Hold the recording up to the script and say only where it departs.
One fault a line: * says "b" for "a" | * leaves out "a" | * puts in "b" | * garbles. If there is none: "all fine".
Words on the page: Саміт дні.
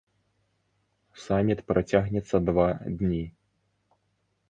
* puts in "працягнецца два"